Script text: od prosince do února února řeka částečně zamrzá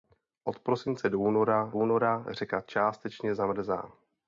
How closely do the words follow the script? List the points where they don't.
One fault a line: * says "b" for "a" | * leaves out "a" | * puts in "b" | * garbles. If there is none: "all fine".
all fine